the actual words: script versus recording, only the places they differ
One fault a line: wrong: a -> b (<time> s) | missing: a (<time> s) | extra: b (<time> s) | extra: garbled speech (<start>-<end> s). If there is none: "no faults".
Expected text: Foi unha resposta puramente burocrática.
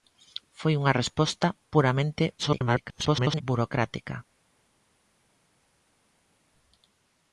extra: garbled speech (2.4-3.4 s)